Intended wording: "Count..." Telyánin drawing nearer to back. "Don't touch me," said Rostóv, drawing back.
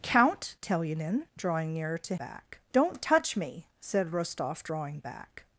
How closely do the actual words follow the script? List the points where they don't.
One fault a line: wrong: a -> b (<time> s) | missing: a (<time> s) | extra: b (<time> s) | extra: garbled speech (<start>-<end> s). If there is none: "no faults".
no faults